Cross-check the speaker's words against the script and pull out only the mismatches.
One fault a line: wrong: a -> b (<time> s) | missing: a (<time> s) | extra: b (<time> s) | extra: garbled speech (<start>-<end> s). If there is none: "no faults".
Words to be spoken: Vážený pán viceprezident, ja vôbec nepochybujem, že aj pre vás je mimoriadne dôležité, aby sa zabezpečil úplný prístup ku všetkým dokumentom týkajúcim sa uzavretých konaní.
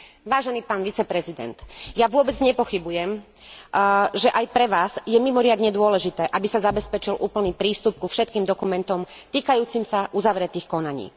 no faults